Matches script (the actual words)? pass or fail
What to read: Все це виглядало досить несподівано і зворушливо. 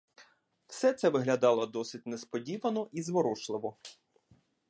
pass